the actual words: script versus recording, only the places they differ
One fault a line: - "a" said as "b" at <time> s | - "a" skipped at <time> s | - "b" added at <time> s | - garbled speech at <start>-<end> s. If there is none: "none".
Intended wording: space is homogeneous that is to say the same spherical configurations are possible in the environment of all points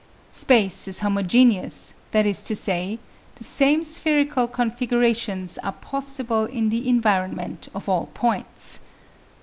none